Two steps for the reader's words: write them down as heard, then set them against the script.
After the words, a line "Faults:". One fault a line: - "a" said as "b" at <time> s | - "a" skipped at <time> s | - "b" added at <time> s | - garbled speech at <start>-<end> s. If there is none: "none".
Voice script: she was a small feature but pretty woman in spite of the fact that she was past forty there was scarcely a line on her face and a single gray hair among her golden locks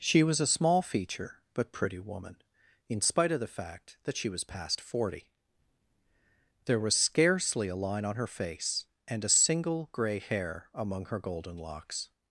she was a small feature but pretty woman in spite of the fact that she was past forty there was scarcely a line on her face and a single gray hair among her golden locks
Faults:
none